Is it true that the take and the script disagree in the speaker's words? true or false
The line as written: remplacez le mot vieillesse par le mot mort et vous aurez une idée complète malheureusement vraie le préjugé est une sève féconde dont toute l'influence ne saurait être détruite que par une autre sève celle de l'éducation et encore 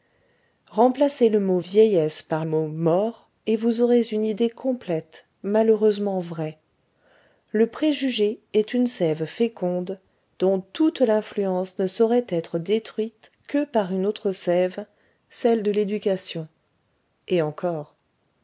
true